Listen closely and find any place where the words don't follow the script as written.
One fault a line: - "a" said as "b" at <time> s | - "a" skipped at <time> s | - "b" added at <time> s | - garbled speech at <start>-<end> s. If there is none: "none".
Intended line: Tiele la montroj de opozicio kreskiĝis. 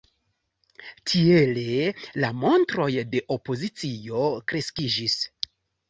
none